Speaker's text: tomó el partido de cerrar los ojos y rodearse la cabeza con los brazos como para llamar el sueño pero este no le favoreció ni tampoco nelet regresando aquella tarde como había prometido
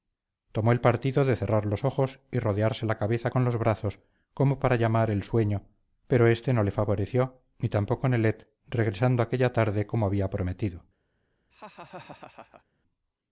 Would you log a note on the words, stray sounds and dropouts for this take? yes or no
yes